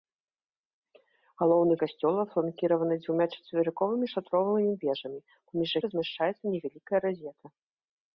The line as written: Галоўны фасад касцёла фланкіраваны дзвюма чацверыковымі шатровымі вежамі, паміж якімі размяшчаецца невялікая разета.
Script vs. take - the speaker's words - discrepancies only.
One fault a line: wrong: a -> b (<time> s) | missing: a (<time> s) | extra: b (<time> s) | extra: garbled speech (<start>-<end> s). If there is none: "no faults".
missing: фасад (1.8 s)
missing: якімі (5.7 s)